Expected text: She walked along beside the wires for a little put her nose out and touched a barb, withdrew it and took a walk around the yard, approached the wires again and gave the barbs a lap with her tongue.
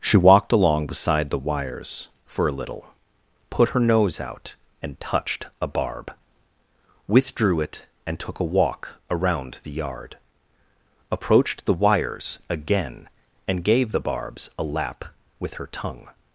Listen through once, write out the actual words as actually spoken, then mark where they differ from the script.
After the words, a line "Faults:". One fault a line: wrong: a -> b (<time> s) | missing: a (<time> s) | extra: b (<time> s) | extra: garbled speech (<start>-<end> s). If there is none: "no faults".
She walked along beside the wires for a little put her nose out and touched a barb, withdrew it and took a walk around the yard, approached the wires again and gave the barbs a lap with her tongue.
Faults:
no faults